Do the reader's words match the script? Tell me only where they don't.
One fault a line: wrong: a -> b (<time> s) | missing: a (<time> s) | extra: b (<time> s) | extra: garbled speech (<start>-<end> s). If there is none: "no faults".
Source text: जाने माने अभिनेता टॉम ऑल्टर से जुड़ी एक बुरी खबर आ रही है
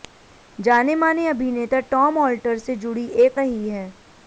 missing: बुरी खबर आ (3.4 s)